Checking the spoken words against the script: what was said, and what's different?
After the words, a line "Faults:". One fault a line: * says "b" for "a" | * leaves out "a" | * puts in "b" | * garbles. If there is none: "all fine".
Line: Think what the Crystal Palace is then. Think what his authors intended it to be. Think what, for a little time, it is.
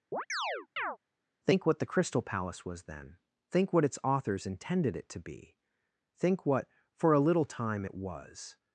Think what the Crystal Palace was then. Think what its authors intended it to be. Think what, for a little time, it was.
Faults:
* says "was" for "is"
* says "its" for "his"
* says "was" for "is"